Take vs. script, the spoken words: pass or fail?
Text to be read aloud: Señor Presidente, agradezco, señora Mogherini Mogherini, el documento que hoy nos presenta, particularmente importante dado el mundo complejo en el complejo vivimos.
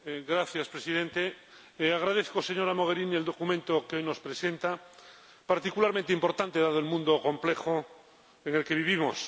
fail